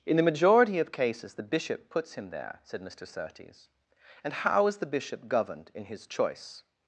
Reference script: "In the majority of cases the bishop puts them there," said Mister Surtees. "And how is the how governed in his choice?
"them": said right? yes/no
no